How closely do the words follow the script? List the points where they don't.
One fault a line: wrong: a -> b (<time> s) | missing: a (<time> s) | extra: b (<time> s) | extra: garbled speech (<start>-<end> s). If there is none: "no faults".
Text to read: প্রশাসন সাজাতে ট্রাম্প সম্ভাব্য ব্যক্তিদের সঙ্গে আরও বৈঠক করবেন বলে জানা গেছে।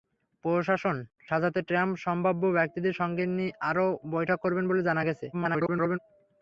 extra: garbled speech (5.3-6.0 s)